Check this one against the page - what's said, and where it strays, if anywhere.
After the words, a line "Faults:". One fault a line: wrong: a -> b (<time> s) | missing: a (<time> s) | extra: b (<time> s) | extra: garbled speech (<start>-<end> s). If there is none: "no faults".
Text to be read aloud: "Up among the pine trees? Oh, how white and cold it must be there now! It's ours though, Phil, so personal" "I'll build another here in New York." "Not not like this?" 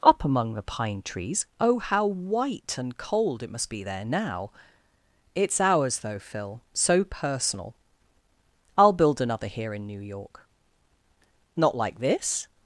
"Up among the pine trees? Oh, how white and cold it must be there now! It's ours though, Phil, so personal" "I'll build another here in New York." "Not like this?"
Faults:
missing: not (11.8 s)